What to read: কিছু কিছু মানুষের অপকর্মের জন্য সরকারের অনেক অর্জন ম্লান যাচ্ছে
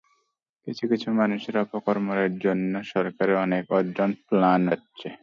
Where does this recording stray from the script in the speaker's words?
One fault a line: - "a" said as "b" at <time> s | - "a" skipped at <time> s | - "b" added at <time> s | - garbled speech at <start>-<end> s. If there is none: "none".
none